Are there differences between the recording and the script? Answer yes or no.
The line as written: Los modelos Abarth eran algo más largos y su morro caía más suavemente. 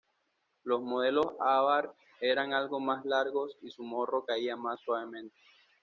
no